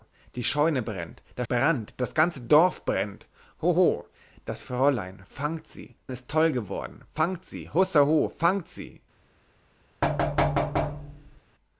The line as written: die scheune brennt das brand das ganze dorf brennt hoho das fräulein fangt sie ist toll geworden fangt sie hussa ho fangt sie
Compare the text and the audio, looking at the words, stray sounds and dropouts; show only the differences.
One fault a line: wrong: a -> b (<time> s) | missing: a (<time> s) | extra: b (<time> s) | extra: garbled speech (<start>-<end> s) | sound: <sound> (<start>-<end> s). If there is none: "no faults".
sound: thud (10.0-11.4 s)